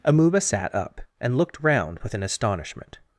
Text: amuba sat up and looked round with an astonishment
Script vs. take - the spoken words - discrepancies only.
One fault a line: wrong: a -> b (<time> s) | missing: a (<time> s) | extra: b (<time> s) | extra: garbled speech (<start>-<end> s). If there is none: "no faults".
no faults